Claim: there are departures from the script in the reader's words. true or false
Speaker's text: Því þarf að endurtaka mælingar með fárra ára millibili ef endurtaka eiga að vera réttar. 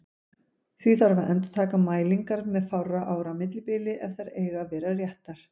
true